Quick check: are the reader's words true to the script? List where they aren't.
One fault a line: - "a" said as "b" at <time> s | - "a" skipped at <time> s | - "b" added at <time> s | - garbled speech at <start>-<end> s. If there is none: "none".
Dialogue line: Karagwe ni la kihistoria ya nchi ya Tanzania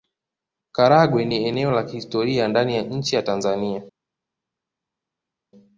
- "eneo" added at 1.5 s
- "ndani" added at 2.5 s